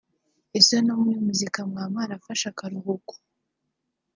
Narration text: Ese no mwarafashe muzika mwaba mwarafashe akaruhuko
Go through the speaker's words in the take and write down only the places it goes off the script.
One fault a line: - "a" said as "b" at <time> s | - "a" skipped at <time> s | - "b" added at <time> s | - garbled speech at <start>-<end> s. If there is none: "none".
- "mwarafashe" said as "muri" at 1.0 s